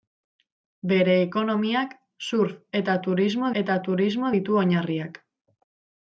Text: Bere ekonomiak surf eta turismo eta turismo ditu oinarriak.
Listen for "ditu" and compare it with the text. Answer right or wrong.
right